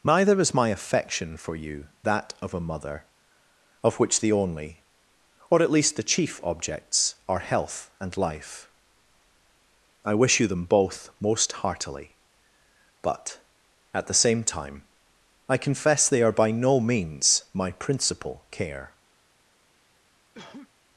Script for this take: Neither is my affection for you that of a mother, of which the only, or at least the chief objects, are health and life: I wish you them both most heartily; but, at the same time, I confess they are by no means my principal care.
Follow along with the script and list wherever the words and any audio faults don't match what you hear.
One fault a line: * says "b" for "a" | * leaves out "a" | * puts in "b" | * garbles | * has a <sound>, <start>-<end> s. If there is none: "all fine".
* has a cough, 20.3-20.7 s